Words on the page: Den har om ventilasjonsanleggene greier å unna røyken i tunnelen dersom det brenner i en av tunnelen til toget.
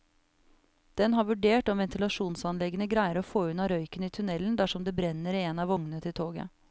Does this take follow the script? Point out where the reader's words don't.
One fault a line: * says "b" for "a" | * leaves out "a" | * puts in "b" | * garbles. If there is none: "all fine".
* puts in "vurdert"
* puts in "få"
* says "vognene" for "tunnelen"